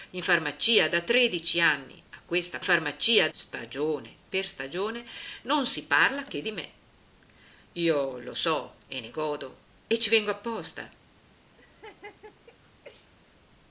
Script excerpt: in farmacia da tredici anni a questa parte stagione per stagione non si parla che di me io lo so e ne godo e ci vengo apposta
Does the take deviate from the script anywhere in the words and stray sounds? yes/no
yes